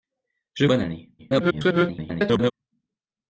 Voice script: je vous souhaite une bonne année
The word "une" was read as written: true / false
false